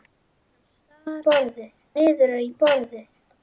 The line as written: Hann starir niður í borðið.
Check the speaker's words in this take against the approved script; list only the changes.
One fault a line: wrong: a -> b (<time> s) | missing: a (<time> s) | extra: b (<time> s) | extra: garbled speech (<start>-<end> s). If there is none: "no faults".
wrong: starir -> borðið (1.3 s)